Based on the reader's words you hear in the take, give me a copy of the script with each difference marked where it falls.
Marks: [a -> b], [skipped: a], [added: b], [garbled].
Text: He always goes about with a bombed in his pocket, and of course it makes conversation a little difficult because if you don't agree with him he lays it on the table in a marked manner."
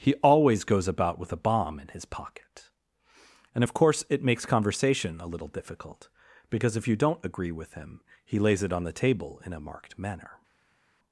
He always goes about with a [bombed -> bomb] in his pocket, and of course it makes conversation a little difficult because if you don't agree with him he lays it on the table in a marked manner."